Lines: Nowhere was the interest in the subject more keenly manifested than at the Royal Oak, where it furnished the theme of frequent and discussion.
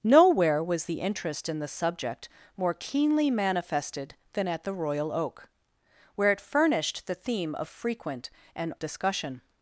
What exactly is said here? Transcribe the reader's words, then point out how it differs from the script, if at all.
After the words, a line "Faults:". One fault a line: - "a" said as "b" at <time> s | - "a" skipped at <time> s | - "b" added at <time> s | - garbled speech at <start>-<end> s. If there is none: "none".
Nowhere was the interest in the subject more keenly manifested than at the Royal Oak, where it furnished the theme of frequent and discussion.
Faults:
none